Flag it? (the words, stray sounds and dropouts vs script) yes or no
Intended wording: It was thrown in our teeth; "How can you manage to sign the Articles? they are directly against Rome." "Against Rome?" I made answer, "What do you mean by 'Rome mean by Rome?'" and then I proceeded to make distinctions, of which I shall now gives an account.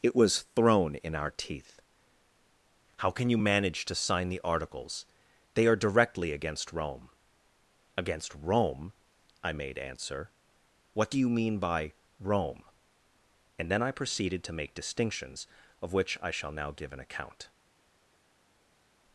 yes